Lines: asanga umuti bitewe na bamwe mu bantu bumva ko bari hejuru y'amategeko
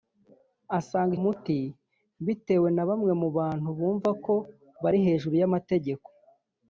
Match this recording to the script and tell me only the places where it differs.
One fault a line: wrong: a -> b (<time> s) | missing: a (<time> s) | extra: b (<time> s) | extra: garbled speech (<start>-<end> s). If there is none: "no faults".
no faults